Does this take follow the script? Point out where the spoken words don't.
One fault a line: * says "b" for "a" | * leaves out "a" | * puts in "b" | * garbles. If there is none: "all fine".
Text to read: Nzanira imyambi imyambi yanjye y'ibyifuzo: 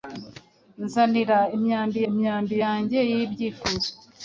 all fine